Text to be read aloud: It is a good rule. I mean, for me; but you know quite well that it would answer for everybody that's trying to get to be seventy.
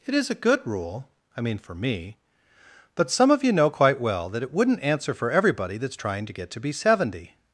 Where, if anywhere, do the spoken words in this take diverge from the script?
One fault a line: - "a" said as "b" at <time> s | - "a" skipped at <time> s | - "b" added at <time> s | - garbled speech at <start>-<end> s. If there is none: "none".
- "some of" added at 3.1 s
- "would" said as "wouldn't" at 4.5 s